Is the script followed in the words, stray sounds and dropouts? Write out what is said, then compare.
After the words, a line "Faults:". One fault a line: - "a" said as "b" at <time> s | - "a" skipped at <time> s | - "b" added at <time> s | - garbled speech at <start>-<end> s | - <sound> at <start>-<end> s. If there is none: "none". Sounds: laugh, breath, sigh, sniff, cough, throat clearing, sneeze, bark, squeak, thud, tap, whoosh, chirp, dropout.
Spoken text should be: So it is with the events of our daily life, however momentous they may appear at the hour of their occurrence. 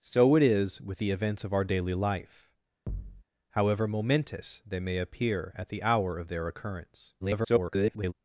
So it is with the events of our daily life, however momentous they may appear at the hour of their occurrence. [garbled]
Faults:
- thud at 2.9-3.2 s
- garbled speech at 7.2-8.1 s